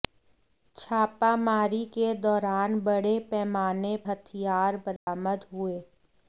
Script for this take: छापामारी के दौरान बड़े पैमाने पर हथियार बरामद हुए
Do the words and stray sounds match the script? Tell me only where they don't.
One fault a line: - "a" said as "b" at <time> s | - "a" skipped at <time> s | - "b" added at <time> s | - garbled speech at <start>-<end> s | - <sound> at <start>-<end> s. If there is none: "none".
- "पर" skipped at 4.0 s
- dropout at 5.0-5.1 s